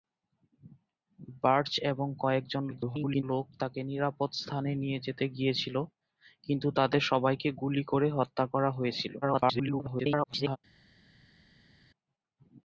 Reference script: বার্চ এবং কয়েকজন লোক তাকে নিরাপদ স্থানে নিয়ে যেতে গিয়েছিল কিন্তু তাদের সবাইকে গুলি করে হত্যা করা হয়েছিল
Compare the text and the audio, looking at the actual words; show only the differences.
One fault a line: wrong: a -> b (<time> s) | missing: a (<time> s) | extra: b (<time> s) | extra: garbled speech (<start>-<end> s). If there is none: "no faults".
extra: garbled speech (2.7-3.2 s)
extra: garbled speech (9.2-10.6 s)